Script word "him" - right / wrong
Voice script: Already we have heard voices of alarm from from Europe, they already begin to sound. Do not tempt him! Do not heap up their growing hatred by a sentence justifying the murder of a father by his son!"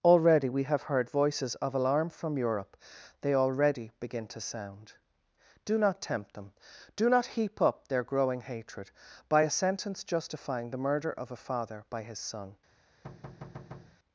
wrong